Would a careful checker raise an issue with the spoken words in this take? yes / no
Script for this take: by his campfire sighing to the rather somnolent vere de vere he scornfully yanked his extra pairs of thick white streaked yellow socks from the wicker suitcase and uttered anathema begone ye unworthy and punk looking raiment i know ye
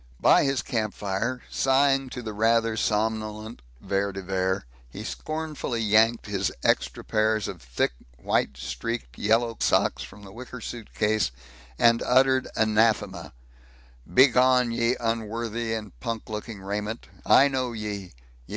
no